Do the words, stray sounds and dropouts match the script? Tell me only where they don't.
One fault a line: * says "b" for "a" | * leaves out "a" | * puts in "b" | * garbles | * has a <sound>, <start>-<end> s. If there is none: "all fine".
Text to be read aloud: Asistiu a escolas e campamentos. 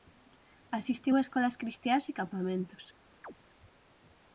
* puts in "cristiás"
* has a chirp, 3.2-3.3 s